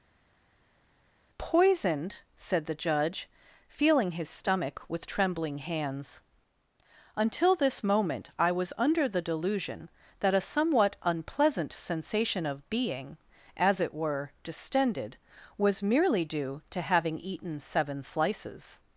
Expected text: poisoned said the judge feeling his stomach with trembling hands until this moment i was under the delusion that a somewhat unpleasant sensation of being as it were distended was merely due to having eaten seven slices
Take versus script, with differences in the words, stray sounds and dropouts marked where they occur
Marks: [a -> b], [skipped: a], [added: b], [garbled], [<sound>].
poisoned said the judge feeling his stomach with trembling hands until this moment i was under the delusion that a somewhat unpleasant sensation of being as it were distended was merely due to having eaten seven slices